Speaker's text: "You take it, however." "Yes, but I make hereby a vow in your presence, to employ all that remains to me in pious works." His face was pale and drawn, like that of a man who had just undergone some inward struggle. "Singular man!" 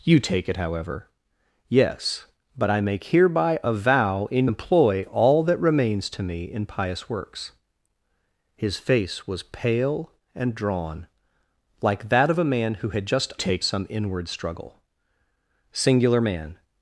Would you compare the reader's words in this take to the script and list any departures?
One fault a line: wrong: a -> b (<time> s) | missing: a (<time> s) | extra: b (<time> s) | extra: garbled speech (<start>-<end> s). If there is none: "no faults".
missing: your presence to (4.5 s)
wrong: undergone -> take (13.3 s)